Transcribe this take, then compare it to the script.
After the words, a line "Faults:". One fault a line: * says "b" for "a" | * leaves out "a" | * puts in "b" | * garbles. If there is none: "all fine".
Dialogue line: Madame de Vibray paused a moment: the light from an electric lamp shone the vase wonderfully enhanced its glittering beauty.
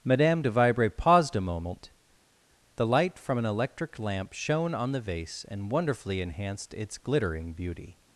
Madame de Vibray paused a moment: the light from an electric lamp shone on the vase and wonderfully enhanced its glittering beauty.
Faults:
* puts in "on"
* puts in "and"